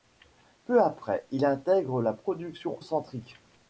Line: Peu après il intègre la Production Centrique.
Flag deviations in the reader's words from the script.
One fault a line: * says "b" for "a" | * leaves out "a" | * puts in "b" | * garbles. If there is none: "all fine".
all fine